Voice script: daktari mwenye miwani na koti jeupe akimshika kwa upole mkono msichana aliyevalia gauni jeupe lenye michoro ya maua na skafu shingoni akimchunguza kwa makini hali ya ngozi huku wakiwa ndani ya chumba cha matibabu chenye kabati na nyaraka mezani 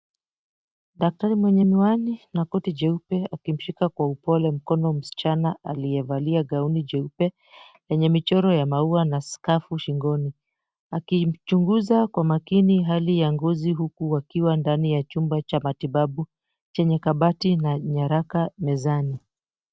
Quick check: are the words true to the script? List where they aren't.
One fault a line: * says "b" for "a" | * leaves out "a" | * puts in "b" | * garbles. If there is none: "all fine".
all fine